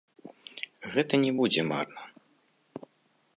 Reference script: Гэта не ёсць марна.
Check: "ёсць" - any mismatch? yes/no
yes